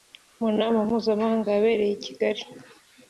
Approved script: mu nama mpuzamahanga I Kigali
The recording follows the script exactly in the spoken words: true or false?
false